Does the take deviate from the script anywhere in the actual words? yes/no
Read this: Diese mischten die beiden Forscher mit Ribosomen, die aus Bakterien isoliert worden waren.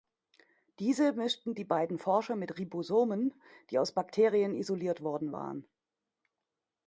no